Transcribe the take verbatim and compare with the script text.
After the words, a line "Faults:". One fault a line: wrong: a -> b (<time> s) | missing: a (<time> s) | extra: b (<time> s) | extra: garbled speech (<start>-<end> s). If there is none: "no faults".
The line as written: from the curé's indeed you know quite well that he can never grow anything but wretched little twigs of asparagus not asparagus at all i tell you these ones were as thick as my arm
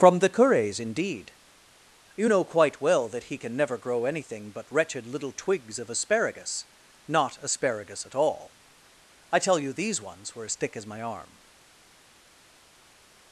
from the curé's indeed you know quite well that he can never grow anything but wretched little twigs of asparagus not asparagus at all i tell you these ones were as thick as my arm
Faults:
no faults